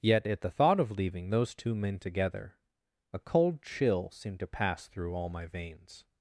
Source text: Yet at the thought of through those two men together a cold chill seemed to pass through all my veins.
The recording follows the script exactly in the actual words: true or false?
false